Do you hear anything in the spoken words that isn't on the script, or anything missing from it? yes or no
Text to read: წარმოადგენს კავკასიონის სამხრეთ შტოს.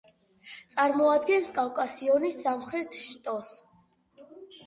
no